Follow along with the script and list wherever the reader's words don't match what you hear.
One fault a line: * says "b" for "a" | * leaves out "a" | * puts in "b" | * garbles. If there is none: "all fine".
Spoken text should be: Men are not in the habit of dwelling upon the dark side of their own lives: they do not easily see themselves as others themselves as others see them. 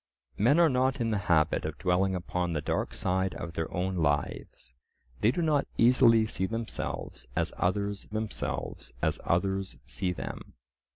all fine